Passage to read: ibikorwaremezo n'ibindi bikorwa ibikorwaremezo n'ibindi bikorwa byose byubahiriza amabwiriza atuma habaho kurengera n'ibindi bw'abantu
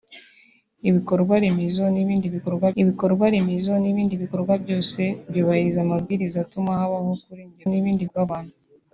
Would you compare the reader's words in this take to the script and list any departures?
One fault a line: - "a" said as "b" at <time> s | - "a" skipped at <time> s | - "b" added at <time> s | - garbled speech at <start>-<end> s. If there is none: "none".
none